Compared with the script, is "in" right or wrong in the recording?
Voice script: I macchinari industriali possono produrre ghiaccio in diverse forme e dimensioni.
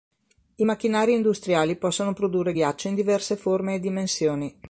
right